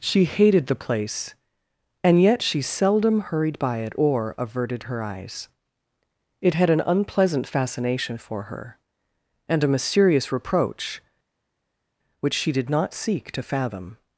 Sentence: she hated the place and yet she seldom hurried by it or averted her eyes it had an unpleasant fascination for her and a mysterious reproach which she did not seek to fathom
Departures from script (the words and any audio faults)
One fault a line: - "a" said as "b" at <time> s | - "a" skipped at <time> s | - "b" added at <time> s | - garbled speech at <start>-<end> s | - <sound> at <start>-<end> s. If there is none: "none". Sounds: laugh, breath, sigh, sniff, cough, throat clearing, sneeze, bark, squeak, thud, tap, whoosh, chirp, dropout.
none